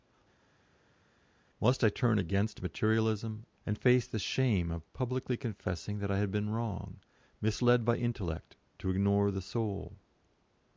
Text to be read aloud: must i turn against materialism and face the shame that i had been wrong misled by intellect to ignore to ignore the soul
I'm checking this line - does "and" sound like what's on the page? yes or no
yes